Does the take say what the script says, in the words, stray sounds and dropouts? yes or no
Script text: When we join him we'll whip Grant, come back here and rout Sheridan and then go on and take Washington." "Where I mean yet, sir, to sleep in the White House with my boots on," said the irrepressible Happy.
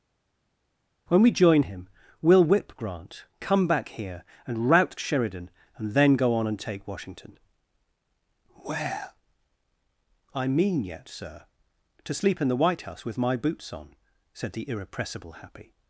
yes